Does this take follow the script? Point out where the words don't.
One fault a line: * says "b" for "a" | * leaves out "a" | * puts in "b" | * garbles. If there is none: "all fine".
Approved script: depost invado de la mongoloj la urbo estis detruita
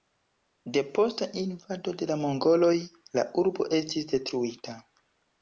all fine